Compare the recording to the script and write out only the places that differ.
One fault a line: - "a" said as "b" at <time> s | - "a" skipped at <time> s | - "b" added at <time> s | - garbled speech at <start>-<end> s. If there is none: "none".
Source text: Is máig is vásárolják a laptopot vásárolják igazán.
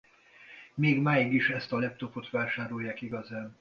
- "Is" said as "Még" at 0.8 s
- "vásárolják" said as "ezt" at 1.5 s